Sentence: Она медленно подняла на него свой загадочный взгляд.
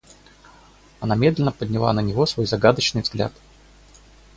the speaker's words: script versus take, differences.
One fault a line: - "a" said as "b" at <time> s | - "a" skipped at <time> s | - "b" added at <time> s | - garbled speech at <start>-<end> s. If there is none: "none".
none